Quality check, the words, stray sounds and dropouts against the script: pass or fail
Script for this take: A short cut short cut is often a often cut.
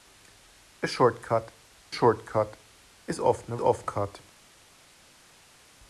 pass